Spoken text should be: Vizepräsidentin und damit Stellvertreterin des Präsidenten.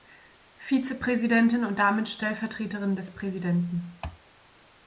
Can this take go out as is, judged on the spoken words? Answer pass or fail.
pass